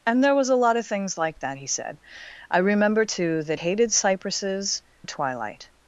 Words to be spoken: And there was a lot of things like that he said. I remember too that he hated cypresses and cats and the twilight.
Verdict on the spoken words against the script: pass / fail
fail